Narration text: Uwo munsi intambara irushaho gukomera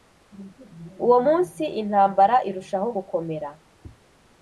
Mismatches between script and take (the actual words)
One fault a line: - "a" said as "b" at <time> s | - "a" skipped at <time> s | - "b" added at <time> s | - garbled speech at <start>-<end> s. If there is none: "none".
none